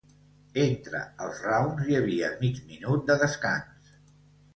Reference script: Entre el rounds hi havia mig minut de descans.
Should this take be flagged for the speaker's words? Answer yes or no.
yes